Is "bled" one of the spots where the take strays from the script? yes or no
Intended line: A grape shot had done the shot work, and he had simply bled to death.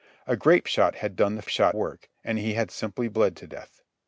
no